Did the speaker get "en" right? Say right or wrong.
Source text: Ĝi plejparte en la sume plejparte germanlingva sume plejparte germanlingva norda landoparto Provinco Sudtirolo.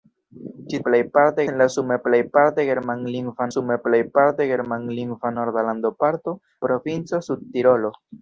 right